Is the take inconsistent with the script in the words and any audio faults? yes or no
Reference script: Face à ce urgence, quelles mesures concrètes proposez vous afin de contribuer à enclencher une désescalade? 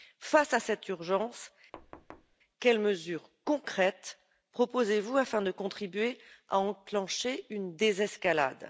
yes